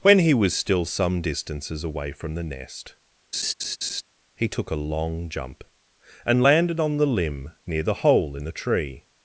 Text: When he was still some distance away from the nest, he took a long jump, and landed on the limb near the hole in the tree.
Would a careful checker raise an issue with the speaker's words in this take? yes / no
yes